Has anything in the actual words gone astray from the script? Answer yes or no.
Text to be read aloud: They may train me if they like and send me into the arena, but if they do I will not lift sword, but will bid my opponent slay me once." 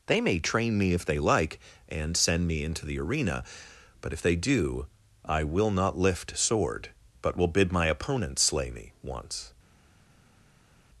no